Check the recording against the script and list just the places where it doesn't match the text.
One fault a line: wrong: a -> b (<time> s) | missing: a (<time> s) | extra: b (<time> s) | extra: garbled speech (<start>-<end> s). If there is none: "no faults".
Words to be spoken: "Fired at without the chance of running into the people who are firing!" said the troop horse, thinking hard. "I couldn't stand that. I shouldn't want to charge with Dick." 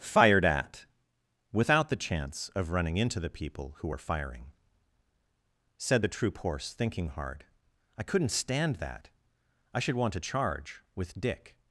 wrong: shouldn't -> should (9.8 s)